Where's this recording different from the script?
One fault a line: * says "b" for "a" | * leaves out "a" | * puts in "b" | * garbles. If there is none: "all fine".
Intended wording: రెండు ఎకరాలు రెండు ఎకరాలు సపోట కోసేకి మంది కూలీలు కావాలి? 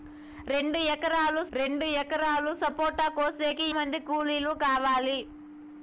all fine